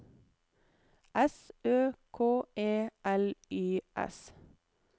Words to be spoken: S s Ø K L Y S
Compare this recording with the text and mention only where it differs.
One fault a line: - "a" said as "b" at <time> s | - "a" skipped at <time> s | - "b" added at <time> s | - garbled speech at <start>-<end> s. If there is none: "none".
- "s" skipped at 1.5 s
- "E" added at 2.5 s